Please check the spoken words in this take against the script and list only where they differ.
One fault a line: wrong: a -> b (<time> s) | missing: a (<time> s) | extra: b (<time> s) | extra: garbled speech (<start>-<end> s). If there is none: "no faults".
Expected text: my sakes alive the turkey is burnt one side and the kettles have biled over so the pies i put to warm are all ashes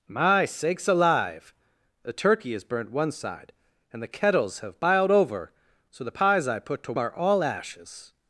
missing: warm (6.9 s)